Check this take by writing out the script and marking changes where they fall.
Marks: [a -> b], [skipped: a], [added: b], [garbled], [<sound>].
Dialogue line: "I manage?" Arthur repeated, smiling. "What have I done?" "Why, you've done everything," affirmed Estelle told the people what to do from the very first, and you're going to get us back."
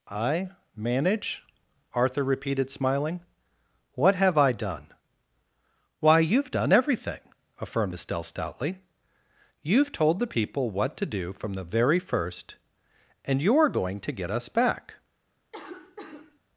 "I manage?" Arthur repeated, smiling. "What have I done?" "Why, you've done everything," affirmed Estelle [added: stoutly You've] told the people what to do from the very first, and you're going to get us back." [cough]